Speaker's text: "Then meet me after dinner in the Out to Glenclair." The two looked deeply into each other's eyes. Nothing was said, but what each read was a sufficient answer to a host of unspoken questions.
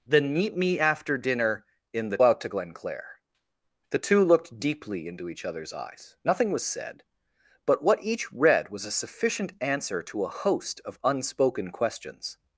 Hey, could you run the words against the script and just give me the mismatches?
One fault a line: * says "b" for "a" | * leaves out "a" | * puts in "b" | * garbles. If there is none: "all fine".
all fine